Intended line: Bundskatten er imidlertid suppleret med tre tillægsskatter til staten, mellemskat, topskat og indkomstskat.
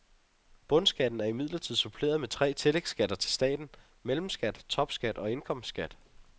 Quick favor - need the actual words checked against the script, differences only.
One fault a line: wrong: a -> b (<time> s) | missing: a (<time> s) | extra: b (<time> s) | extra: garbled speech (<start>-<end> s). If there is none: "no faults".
no faults